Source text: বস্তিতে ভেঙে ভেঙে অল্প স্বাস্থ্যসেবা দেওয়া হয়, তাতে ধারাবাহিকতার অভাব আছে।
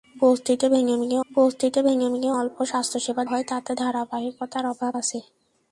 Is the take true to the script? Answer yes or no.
no